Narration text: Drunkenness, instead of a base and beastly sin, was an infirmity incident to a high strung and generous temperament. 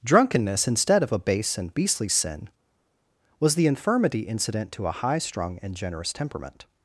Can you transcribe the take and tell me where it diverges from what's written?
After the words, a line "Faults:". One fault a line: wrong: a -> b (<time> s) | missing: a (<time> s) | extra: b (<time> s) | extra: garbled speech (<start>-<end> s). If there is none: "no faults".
Drunkenness, instead of a base and beastly sin, was the infirmity incident to a high strung and generous temperament.
Faults:
wrong: an -> the (3.5 s)